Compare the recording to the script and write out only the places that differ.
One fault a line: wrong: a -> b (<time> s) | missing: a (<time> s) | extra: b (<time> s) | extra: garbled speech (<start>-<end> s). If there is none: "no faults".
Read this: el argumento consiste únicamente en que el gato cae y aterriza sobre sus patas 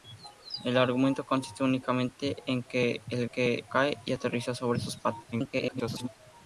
wrong: gato -> que (3.3 s)
extra: garbled speech (5.3-6.1 s)